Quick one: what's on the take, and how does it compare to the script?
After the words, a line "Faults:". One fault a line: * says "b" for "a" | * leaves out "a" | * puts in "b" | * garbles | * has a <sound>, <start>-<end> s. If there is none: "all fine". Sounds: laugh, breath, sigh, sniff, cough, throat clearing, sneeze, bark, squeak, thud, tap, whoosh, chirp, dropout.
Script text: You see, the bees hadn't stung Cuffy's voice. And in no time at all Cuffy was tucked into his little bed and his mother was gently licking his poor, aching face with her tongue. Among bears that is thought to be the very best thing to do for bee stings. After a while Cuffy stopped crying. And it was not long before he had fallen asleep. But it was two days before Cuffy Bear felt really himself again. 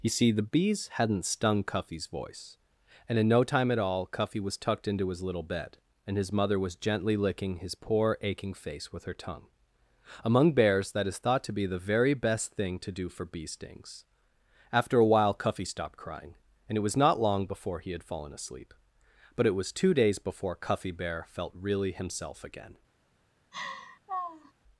You see, the bees hadn't stung Cuffy's voice. And in no time at all Cuffy was tucked into his little bed and his mother was gently licking his poor, aching face with her tongue. Among bears that is thought to be the very best thing to do for bee stings. After a while Cuffy stopped crying. And it was not long before he had fallen asleep. But it was two days before Cuffy Bear felt really himself again.
Faults:
* has a laugh, 23.5-24.5 s